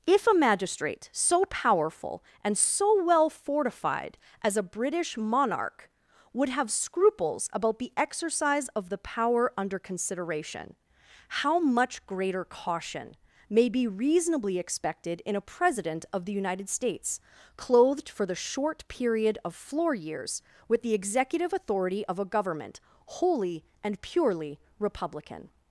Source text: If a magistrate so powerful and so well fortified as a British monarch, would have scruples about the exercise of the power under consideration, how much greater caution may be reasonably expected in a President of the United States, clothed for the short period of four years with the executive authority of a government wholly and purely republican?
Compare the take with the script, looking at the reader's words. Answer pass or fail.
fail